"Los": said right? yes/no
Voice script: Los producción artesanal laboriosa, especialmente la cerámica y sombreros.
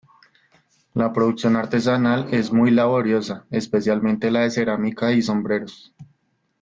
no